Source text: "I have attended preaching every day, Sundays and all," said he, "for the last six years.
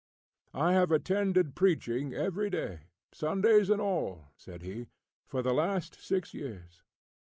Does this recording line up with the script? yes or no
yes